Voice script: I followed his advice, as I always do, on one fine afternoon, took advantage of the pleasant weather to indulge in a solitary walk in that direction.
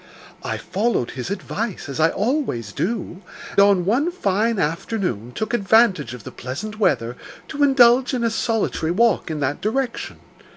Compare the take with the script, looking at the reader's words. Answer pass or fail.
pass